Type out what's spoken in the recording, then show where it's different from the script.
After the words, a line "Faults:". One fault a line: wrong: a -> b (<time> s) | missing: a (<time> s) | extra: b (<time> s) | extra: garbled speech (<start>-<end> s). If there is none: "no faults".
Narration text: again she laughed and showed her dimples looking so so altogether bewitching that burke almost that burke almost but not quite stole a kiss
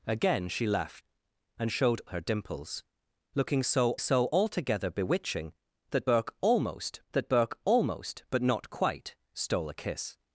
again she laughed and showed her dimples looking so so altogether bewitching that burke almost that burke almost but not quite stole a kiss
Faults:
no faults